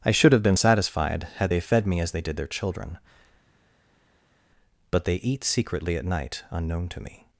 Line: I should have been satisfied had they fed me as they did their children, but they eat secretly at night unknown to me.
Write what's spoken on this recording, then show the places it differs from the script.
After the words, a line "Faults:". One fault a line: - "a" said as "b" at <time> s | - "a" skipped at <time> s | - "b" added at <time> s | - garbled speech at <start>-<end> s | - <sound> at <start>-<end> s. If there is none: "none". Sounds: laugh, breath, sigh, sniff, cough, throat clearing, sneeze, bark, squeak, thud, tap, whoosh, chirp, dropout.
I should have been satisfied had they fed me as they did their children, but they eat secretly at night unknown to me.
Faults:
none